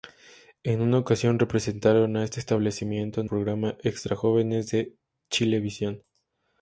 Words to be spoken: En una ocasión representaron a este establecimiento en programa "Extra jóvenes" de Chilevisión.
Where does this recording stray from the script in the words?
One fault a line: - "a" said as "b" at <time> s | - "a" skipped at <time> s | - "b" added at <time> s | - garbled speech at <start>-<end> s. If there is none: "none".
none